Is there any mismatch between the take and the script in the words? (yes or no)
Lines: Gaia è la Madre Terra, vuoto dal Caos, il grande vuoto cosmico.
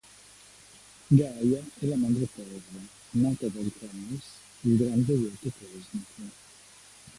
yes